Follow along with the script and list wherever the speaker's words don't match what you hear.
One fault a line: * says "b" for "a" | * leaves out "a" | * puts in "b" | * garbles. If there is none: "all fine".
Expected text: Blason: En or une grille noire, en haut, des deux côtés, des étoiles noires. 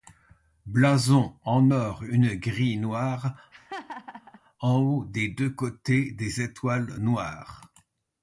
all fine